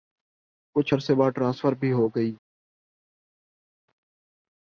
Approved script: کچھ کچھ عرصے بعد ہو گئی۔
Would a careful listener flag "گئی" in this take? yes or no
no